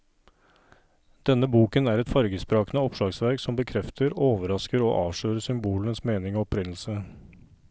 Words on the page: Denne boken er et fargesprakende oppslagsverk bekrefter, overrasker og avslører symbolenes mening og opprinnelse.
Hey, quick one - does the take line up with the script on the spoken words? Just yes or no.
no